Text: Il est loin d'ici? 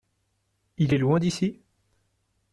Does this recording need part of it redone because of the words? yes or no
no